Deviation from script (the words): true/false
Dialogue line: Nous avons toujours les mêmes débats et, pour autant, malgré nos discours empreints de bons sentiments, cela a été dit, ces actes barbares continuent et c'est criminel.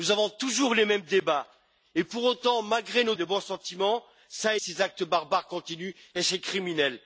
true